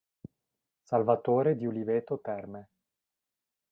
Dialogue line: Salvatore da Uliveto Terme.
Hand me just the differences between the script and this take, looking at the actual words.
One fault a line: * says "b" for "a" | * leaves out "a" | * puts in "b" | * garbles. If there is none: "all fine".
* says "di" for "da"